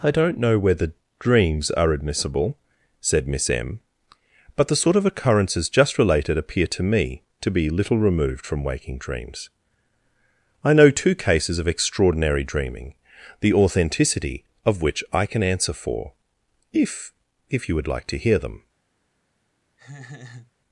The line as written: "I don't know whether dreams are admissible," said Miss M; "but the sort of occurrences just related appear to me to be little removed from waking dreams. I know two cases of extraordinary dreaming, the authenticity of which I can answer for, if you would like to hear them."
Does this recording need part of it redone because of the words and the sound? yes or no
yes